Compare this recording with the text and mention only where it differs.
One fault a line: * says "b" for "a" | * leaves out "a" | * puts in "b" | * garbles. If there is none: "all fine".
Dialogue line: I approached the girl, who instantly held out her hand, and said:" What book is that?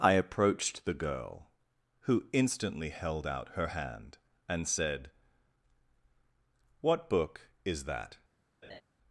all fine